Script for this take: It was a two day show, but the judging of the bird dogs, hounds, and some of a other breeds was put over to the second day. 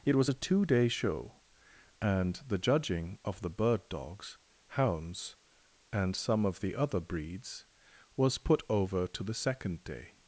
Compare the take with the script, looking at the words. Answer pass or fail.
fail